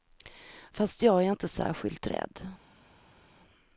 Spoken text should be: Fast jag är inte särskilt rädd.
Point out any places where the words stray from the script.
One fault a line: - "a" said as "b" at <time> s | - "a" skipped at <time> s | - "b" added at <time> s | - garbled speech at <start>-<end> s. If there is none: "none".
none